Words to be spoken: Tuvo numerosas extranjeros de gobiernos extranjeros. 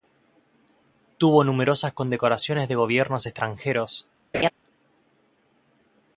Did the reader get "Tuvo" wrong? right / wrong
right